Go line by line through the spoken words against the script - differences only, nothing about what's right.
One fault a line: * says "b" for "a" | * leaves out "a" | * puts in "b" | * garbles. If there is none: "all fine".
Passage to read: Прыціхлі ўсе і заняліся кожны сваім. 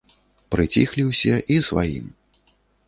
* leaves out "заняліся кожны"